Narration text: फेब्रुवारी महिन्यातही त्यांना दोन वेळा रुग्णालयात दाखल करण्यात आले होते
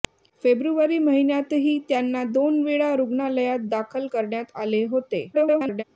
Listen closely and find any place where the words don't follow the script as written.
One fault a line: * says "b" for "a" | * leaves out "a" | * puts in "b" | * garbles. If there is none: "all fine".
* garbles